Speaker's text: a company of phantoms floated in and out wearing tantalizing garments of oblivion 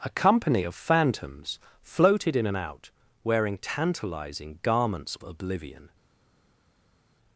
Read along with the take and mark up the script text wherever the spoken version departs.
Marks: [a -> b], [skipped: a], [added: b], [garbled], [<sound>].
a company of phantoms floated in and out wearing tantalizing garments [skipped: of] oblivion